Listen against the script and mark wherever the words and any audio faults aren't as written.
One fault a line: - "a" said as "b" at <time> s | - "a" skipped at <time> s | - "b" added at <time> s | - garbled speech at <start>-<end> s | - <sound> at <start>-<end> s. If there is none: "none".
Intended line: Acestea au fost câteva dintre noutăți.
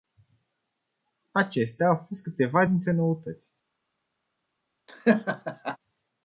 - laugh at 4.9-5.8 s